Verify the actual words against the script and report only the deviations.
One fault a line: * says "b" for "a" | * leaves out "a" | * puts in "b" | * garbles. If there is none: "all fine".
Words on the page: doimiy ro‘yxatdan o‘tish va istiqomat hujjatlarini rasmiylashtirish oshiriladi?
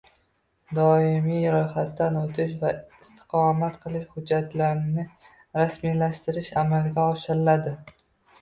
* puts in "qilish"
* puts in "amalga"